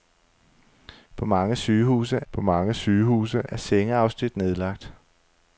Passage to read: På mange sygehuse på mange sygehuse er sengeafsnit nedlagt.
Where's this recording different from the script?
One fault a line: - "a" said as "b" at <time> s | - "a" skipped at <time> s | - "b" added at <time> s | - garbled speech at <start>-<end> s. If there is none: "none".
none